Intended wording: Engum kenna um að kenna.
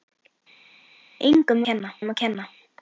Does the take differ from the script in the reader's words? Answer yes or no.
no